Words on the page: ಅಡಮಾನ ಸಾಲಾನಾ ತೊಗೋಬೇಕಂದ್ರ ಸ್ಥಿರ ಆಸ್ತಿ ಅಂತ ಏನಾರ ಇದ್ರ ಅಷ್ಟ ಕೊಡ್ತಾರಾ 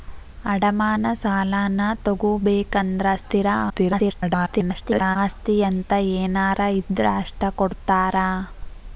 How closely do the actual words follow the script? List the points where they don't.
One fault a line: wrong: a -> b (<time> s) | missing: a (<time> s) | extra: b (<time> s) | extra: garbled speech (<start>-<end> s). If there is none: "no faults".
extra: garbled speech (3.7-5.2 s)